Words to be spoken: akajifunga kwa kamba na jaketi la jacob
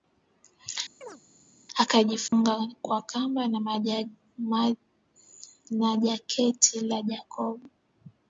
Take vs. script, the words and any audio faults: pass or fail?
fail